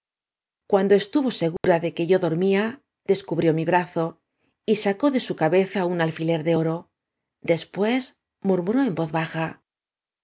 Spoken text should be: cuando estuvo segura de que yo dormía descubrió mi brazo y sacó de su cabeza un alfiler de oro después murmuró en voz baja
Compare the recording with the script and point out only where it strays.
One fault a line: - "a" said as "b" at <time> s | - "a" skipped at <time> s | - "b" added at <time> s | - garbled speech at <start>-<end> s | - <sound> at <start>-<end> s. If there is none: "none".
- dropout at 1.6-1.6 s